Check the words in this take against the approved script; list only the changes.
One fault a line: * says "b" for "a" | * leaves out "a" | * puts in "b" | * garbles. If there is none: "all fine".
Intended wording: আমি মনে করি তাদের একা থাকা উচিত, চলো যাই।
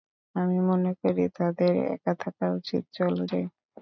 all fine